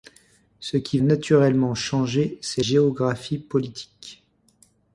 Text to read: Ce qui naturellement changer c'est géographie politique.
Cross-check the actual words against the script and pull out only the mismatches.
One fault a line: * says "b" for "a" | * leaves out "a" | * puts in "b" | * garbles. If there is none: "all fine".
all fine